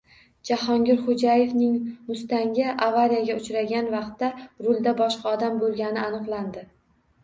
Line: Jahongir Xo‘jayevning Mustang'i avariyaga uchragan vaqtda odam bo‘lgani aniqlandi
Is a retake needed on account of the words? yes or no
yes